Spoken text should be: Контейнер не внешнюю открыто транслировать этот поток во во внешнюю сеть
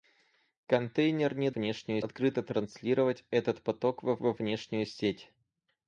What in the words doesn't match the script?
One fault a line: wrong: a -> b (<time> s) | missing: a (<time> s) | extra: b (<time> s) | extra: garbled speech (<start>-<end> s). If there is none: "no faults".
no faults